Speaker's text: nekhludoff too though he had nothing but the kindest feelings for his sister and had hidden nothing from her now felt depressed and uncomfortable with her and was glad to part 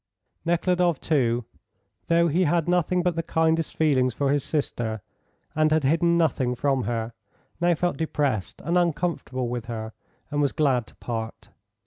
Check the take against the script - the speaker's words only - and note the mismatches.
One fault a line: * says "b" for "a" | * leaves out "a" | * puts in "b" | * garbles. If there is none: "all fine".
all fine